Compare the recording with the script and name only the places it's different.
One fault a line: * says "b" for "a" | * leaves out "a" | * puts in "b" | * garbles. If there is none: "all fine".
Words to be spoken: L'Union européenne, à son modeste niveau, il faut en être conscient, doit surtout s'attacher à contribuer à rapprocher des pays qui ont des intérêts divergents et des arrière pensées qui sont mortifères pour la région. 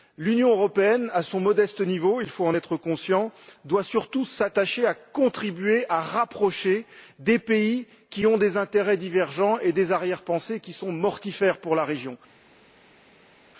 all fine